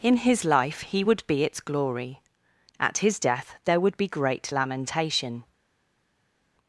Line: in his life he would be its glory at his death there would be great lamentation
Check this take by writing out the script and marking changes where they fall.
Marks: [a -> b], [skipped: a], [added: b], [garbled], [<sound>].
in his life he would be its glory at his death there would be great lamentation